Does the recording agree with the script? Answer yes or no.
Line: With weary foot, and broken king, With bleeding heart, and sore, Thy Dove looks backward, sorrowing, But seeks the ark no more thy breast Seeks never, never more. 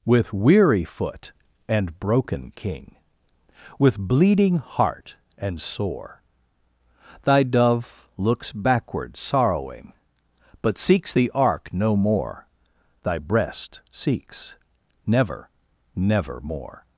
yes